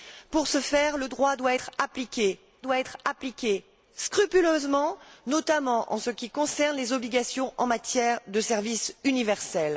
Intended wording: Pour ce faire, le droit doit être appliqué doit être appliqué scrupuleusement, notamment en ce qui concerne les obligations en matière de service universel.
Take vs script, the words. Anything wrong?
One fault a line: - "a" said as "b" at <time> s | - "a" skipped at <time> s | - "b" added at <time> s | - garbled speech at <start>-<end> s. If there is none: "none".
none